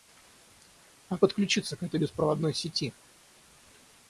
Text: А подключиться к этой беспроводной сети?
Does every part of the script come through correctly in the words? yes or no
yes